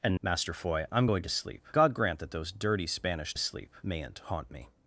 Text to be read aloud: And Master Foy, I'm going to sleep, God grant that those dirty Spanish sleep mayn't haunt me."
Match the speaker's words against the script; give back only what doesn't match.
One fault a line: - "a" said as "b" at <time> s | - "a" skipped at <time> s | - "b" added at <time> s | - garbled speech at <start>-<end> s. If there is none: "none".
none